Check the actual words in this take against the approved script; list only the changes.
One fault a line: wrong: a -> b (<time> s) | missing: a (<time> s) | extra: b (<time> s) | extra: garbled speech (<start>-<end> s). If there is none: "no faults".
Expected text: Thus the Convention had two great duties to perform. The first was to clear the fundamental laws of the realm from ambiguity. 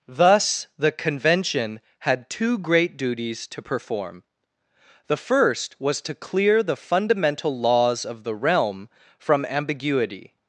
no faults